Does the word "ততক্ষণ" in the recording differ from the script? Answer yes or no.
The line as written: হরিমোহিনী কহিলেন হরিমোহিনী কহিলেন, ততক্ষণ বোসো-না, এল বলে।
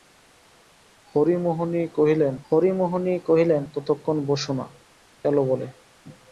no